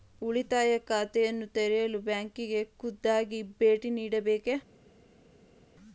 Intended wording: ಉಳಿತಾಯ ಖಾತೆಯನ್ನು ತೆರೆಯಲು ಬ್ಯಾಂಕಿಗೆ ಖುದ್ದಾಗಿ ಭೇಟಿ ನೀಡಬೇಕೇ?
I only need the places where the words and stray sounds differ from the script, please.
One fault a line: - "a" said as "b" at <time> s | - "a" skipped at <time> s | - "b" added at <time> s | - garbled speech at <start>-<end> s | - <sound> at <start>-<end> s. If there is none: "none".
none